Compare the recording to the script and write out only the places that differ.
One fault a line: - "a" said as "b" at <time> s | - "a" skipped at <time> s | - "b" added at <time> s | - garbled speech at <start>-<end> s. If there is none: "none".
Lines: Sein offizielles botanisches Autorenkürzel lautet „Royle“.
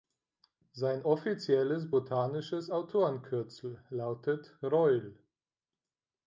none